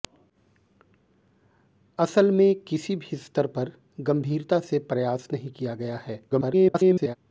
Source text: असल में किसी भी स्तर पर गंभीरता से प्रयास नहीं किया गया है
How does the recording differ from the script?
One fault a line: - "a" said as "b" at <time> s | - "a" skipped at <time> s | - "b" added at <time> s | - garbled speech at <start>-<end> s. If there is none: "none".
- garbled speech at 6.3-7.2 s